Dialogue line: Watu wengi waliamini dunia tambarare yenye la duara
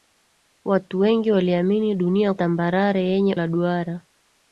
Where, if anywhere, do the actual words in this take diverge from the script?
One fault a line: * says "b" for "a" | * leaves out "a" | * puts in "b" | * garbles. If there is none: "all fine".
all fine